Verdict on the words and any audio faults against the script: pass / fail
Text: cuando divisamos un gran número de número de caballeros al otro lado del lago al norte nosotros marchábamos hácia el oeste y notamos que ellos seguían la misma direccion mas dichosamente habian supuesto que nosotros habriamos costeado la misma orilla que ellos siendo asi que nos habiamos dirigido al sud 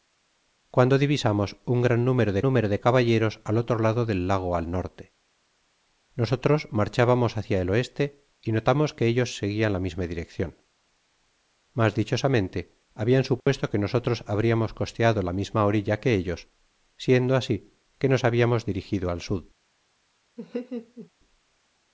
fail